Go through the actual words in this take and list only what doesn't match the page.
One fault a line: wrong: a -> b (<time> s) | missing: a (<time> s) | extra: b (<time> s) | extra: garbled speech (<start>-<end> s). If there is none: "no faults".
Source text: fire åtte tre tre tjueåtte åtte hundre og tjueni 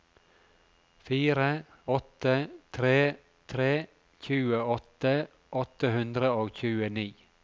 no faults